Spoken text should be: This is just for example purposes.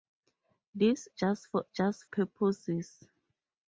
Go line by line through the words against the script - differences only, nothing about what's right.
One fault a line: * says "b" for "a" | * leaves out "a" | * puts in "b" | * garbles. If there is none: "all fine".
* leaves out "is"
* says "just" for "example"